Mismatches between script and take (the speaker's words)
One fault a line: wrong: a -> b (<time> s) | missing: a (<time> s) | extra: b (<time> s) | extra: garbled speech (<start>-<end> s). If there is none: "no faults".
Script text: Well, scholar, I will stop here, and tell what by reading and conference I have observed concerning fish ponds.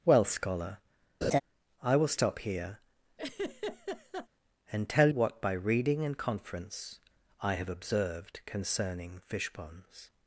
no faults